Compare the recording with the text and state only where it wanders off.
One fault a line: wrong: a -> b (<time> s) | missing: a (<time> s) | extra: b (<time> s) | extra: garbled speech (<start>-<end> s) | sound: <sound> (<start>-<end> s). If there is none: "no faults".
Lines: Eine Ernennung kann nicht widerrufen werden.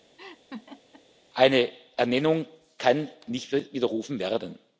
sound: laugh (0.2-1.0 s)